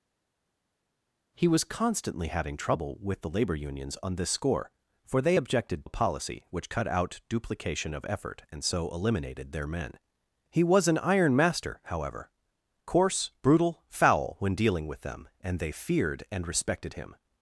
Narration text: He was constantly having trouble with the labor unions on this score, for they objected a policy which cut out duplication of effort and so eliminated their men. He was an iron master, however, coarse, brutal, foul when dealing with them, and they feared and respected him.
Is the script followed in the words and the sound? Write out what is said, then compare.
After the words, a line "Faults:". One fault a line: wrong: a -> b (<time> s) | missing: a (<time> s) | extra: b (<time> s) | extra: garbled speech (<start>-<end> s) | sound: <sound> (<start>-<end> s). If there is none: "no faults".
He was constantly having trouble with the labor unions on this score, for they objected a policy which cut out duplication of effort and so eliminated their men. He was an iron master, however, coarse, brutal, foul when dealing with them, and they feared and respected him.
Faults:
no faults